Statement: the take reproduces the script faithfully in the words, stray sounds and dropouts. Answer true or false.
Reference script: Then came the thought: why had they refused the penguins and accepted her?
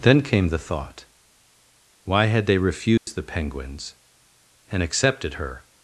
false